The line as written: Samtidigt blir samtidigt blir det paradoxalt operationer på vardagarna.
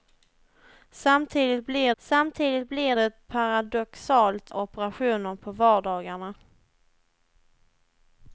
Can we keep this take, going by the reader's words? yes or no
yes